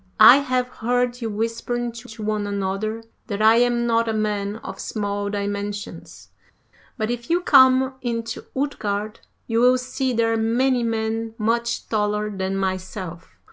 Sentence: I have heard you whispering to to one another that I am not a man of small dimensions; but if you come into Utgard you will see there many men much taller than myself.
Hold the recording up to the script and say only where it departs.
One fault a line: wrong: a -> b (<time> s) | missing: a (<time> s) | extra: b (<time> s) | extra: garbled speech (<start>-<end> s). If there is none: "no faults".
no faults